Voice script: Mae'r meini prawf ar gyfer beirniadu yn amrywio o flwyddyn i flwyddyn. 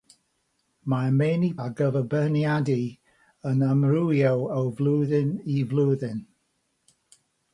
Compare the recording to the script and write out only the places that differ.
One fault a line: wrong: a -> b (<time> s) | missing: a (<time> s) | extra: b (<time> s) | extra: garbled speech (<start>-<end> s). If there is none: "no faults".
missing: prawf (1.5 s)